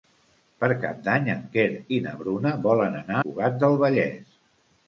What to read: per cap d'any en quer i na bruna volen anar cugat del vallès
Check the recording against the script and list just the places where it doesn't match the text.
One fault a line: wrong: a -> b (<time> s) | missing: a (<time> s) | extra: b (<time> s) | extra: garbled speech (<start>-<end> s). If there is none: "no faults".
no faults